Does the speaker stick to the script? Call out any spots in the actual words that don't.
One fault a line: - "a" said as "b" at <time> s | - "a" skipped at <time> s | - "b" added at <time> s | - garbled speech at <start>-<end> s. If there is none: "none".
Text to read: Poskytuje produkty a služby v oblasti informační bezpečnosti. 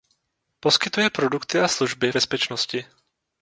- "v oblasti informační" skipped at 2.1 s